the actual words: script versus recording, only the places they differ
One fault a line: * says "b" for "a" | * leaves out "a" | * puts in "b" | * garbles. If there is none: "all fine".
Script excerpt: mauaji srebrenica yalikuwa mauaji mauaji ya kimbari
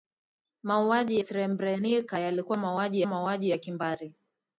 all fine